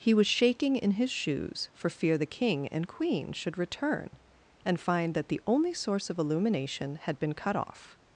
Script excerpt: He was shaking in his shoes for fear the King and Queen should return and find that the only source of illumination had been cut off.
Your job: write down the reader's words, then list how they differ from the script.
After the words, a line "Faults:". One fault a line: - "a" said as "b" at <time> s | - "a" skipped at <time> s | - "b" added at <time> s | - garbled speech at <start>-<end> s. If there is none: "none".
He was shaking in his shoes for fear the King and Queen should return and find that the only source of illumination had been cut off.
Faults:
none